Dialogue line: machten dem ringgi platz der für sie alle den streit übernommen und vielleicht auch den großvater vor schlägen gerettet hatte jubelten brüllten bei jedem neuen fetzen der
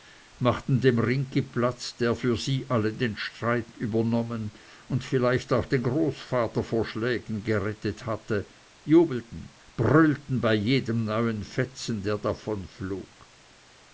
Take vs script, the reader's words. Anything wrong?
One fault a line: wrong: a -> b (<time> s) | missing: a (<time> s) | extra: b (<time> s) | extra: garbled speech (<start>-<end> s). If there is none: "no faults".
no faults